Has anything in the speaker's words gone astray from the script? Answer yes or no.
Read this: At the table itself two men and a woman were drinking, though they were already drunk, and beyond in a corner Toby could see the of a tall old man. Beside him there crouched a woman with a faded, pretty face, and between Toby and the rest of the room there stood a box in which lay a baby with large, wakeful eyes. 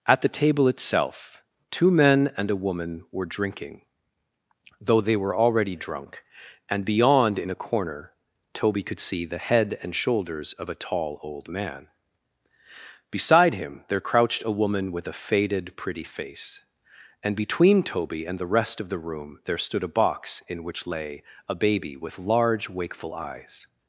yes